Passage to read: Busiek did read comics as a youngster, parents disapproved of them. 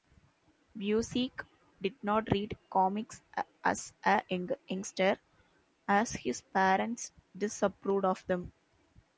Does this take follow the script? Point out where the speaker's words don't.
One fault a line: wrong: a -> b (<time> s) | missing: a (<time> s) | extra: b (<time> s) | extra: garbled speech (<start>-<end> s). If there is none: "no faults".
extra: not (2.0 s)
extra: as his (5.9 s)